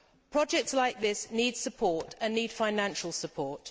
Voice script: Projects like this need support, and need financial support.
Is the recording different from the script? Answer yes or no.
no